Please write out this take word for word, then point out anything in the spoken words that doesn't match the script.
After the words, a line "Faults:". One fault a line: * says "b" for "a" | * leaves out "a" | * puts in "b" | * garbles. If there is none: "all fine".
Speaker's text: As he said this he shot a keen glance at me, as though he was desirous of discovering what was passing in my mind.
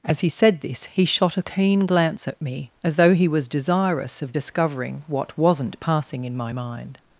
As he said this he shot a keen glance at me, as though he was desirous of discovering what wasn't passing in my mind.
Faults:
* says "wasn't" for "was"